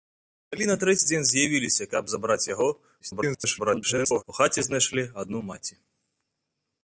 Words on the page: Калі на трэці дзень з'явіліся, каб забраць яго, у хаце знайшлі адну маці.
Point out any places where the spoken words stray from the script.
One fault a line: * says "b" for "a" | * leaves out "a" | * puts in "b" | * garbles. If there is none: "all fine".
* garbles